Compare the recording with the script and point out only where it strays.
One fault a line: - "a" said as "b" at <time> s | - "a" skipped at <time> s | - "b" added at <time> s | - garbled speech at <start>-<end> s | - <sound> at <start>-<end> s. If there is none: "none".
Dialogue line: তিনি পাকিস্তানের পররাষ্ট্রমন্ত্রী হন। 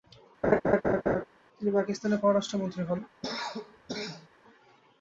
- laugh at 0.4-1.2 s
- cough at 3.2-4.3 s